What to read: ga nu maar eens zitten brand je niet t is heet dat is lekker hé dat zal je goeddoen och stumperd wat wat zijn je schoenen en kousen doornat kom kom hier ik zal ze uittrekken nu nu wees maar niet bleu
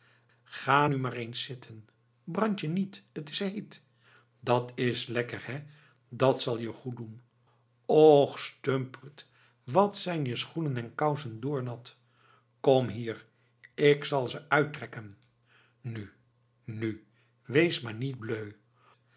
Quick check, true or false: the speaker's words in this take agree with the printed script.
false